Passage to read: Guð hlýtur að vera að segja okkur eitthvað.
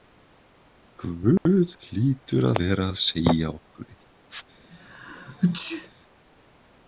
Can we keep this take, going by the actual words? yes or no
yes